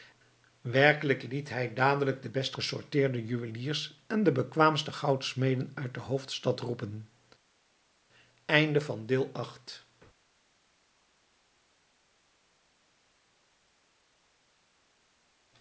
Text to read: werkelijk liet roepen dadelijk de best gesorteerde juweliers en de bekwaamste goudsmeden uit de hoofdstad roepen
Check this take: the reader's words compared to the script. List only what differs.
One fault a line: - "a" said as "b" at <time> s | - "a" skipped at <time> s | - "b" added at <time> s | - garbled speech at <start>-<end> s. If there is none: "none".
- "roepen" said as "hij" at 1.5 s